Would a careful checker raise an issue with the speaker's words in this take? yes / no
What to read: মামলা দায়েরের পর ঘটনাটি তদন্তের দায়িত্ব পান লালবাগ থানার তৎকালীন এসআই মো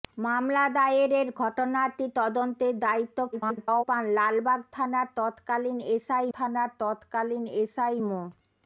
yes